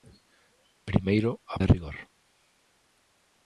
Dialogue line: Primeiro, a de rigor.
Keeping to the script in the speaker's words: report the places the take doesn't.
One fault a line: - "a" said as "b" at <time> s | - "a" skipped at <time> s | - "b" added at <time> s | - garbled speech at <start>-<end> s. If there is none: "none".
none